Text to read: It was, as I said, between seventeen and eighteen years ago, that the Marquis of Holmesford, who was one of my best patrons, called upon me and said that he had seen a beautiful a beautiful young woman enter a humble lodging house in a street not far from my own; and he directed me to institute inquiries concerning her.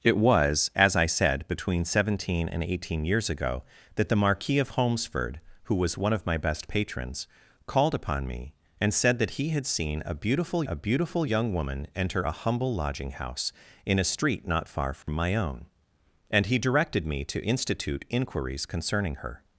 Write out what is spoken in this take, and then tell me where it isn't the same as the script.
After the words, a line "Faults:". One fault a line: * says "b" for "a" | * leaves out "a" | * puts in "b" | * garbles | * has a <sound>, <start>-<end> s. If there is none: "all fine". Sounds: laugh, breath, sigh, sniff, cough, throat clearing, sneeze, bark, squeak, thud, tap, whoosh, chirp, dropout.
It was, as I said, between seventeen and eighteen years ago, that the Marquis of Holmesford, who was one of my best patrons, called upon me and said that he had seen a beautiful a beautiful young woman enter a humble lodging house in a street not far from my own; and he directed me to institute inquiries concerning her.
Faults:
* has a dropout, 15.0-15.1 s